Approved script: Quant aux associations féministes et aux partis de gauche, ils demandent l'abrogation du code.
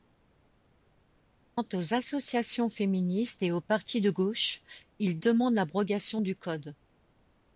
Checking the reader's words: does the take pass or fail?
pass